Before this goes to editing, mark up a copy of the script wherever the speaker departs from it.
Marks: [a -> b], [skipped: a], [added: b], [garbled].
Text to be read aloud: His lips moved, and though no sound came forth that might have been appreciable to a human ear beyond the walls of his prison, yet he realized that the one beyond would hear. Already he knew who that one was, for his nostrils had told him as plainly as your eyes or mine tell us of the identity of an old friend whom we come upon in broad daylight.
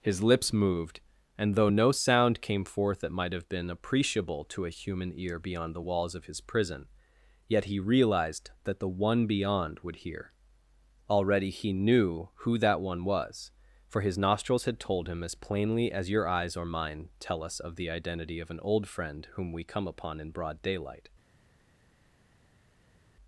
His lips moved, and though no sound came forth that might have been appreciable to a human ear beyond the walls of his prison, yet he realized that the one beyond would hear. Already he knew who that one was, for his nostrils had told him as plainly as your eyes or mine tell us of the identity of an old friend whom we come upon in broad daylight.